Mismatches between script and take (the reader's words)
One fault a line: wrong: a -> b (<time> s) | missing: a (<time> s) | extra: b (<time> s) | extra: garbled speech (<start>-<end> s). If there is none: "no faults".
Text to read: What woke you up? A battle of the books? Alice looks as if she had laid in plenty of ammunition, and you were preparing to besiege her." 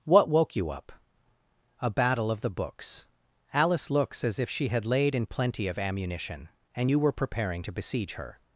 no faults